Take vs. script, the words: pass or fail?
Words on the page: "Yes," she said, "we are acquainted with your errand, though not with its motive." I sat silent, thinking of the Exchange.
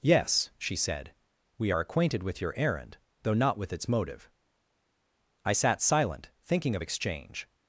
fail